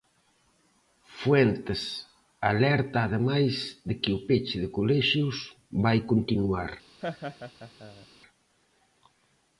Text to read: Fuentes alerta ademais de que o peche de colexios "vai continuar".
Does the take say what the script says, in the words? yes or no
yes